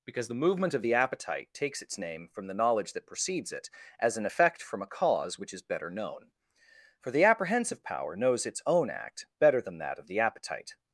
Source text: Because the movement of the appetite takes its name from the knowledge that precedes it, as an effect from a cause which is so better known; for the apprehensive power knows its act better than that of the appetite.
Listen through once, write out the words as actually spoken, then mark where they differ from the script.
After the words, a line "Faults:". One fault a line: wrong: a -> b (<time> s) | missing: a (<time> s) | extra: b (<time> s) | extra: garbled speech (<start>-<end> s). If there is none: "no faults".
Because the movement of the appetite takes its name from the knowledge that precedes it, as an effect from a cause which is better known; for the apprehensive power knows its own act better than that of the appetite.
Faults:
missing: so (5.6 s)
extra: own (8.7 s)